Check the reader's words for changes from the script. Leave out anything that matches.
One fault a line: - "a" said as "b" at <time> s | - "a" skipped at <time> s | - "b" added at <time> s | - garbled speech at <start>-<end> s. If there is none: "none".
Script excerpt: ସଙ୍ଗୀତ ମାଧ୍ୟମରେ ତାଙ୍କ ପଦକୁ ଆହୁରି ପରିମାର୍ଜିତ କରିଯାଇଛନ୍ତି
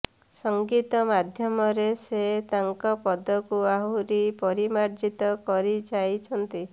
- "ସେ" added at 2.0 s